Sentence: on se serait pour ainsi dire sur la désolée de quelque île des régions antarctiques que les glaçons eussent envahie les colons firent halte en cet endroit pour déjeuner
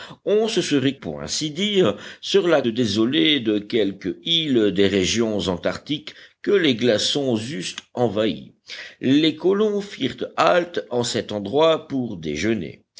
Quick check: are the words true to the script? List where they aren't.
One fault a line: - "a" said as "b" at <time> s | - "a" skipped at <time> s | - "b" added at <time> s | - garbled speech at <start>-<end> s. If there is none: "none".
none